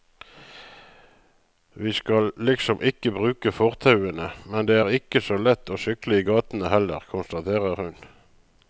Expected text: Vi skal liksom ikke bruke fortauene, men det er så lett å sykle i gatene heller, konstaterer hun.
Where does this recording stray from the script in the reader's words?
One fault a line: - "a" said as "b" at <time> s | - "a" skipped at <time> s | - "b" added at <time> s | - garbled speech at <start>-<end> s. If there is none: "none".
- "ikke" added at 5.0 s